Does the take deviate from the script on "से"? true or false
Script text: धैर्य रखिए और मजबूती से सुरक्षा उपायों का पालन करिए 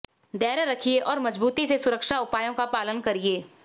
false